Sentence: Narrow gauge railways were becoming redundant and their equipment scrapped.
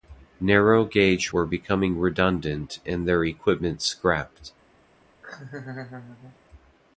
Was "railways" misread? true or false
true